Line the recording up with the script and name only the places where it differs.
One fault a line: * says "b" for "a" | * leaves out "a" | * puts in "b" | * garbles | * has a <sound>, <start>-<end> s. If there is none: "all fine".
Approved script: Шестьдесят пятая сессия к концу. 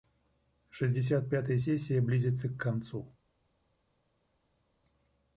* puts in "близится"